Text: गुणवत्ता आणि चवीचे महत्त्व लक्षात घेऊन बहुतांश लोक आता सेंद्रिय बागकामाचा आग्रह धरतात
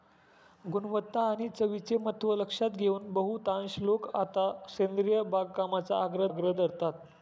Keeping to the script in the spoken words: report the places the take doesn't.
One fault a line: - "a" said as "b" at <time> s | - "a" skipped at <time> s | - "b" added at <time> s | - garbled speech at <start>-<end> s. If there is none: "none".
- "आग्रह" added at 6.3 s